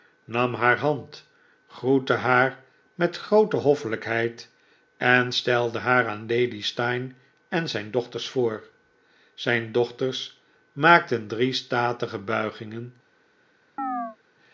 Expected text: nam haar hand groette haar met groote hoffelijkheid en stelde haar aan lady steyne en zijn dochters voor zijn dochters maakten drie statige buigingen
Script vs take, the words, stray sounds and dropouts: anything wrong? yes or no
yes